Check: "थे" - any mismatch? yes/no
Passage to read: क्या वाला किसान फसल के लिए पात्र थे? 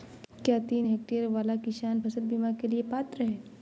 yes